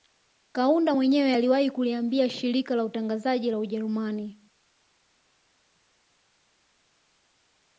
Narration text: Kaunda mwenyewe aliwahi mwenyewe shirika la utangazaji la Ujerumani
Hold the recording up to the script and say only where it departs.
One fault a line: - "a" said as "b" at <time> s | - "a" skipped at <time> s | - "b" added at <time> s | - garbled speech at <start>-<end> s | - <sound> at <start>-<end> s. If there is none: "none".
- "mwenyewe" said as "kuliambia" at 1.7 s